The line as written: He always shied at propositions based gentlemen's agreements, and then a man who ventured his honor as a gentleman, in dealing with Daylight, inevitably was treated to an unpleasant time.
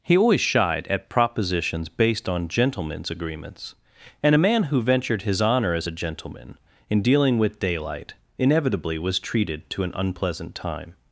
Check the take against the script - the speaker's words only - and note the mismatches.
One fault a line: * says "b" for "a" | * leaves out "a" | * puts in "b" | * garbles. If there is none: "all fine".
* puts in "on"
* leaves out "then"